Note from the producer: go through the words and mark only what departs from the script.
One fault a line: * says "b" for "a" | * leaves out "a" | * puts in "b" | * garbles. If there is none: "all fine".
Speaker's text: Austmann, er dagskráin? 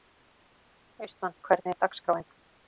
* puts in "hvernig"